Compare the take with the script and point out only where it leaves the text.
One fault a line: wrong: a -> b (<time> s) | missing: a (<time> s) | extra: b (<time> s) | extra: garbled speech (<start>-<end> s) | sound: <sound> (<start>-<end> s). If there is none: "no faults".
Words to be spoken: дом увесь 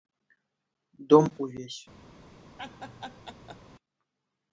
sound: laugh (2.6-3.6 s)